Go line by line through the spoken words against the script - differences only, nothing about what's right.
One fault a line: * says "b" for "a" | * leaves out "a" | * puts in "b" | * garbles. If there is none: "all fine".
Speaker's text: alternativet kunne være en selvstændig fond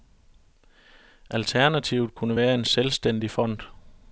all fine